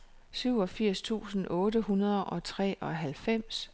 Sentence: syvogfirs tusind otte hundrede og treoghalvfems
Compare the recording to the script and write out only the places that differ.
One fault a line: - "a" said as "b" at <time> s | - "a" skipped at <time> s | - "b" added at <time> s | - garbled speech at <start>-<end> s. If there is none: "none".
none